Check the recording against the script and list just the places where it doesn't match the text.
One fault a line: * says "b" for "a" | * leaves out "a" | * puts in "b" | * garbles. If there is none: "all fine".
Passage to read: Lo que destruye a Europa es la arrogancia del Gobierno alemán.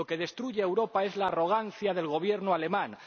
all fine